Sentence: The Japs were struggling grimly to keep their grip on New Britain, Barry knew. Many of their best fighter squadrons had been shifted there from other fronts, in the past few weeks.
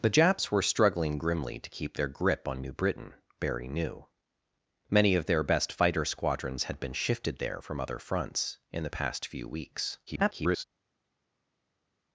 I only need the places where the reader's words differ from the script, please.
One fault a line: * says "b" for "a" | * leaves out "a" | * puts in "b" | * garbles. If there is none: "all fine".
* garbles